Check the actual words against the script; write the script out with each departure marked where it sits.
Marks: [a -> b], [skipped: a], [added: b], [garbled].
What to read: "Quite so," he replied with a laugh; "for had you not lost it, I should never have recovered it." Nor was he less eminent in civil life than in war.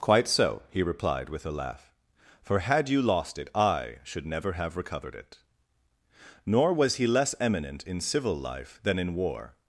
"Quite so," he replied with a laugh; "for had you [skipped: not] lost it, I should never have recovered it." Nor was he less eminent in civil life than in war.